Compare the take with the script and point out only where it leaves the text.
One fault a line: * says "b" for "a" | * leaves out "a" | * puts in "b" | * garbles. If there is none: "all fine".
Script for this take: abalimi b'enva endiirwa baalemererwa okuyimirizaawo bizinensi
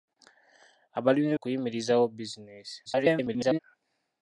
* leaves out "b'enva endiirwa baalemererwa"
* garbles